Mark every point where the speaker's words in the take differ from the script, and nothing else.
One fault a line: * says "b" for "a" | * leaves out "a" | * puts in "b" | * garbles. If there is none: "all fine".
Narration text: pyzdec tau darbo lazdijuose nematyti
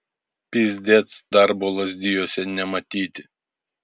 * leaves out "tau"